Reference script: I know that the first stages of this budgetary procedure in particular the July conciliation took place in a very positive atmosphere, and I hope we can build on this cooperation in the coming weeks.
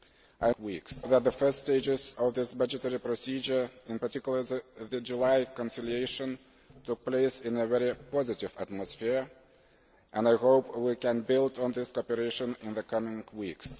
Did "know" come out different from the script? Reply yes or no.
yes